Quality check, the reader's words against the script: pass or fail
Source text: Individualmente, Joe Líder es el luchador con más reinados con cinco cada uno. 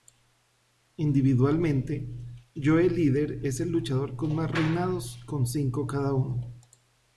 pass